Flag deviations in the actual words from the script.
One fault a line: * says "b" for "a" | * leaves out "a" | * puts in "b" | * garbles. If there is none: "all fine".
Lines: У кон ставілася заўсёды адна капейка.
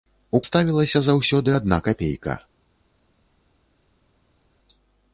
* leaves out "кон"